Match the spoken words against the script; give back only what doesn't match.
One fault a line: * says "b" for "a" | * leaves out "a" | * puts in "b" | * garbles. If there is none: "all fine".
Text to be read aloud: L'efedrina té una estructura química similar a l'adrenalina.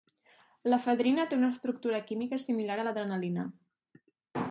all fine